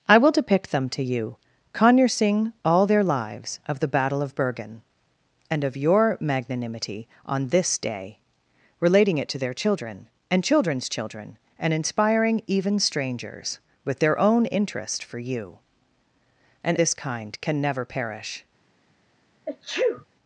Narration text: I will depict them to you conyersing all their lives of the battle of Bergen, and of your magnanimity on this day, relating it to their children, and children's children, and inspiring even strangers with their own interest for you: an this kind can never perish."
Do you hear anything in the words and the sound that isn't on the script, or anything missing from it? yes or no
yes